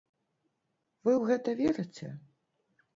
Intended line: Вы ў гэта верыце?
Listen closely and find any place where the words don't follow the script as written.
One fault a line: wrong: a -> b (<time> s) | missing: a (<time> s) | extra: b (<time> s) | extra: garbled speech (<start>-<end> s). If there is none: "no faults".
no faults